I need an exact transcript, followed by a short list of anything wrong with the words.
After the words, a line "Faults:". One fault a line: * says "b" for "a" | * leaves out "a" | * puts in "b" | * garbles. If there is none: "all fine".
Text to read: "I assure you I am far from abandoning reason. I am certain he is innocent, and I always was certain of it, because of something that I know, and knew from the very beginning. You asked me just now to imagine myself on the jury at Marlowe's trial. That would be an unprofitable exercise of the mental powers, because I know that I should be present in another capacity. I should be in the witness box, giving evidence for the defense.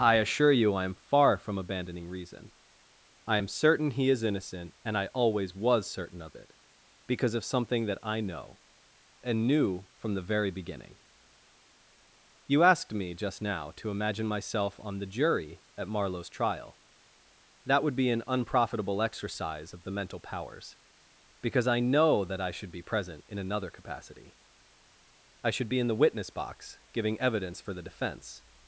"I assure you I am far from abandoning reason. I am certain he is innocent, and I always was certain of it, because of something that I know, and knew from the very beginning. You asked me just now to imagine myself on the jury at Marlowe's trial. That would be an unprofitable exercise of the mental powers, because I know that I should be present in another capacity. I should be in the witness box, giving evidence for the defense.
Faults:
all fine